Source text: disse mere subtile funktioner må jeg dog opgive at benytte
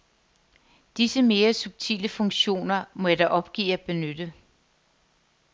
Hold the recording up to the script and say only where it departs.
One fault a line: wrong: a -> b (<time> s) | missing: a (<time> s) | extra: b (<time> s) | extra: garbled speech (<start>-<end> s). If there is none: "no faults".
no faults